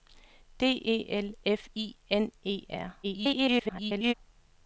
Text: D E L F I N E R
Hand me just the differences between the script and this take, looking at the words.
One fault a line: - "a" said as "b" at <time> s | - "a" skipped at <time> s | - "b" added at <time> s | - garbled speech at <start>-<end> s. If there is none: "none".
- garbled speech at 3.0-4.1 s